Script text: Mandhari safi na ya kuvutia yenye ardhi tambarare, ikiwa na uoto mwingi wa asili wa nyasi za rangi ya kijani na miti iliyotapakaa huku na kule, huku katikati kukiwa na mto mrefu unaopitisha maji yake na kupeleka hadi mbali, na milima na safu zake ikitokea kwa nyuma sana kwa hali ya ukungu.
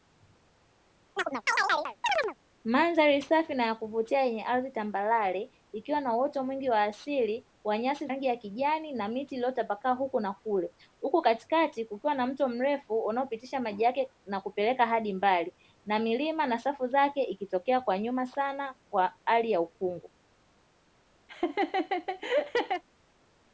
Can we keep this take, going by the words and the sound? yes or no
no